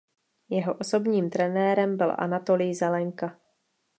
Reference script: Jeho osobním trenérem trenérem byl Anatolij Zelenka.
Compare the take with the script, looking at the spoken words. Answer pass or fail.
fail